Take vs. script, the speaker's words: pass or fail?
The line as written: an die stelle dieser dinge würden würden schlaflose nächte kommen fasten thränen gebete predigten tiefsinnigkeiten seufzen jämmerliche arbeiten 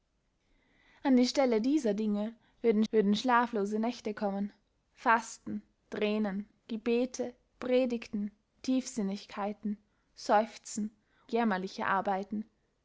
pass